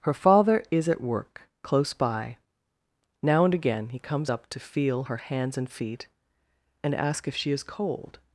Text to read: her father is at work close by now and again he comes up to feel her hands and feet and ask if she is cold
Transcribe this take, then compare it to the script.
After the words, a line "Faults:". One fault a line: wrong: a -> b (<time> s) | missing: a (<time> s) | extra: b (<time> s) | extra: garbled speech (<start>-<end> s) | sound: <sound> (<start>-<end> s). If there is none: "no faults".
her father is at work close by now and again he comes up to feel her hands and feet and ask if she is cold
Faults:
no faults